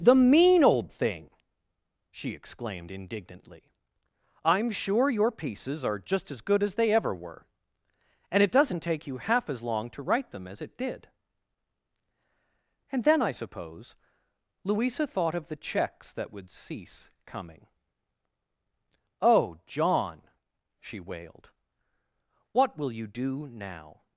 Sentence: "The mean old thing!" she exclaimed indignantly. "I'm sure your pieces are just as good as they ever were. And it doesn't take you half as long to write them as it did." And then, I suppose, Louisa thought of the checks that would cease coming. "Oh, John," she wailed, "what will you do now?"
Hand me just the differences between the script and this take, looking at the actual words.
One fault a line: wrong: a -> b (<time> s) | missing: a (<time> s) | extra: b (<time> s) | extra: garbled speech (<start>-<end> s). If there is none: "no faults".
no faults